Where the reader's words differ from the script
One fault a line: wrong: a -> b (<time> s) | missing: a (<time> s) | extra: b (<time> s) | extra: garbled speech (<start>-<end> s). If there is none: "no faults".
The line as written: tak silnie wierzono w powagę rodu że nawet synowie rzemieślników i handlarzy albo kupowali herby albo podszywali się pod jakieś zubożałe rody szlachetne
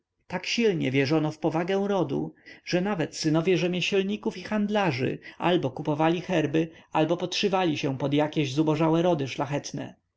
no faults